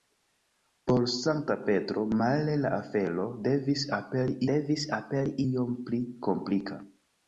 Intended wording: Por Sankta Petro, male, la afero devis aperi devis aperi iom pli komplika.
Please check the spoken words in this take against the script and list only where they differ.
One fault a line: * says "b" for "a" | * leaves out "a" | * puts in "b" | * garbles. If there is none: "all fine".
all fine